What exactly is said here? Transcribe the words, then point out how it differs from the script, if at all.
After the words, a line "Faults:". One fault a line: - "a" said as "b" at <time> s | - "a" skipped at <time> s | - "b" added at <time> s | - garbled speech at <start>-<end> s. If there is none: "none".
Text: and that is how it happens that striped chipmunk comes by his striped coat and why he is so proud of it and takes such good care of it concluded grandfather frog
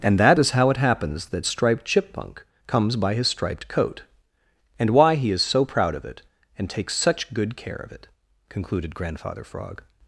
and that is how it happens that striped chipmunk comes by his striped coat and why he is so proud of it and takes such good care of it concluded grandfather frog
Faults:
none